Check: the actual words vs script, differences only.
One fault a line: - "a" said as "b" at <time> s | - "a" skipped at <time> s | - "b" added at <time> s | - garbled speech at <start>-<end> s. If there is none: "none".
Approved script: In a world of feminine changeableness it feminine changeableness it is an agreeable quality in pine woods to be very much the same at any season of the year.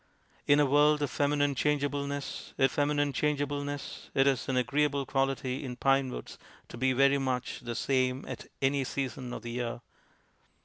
none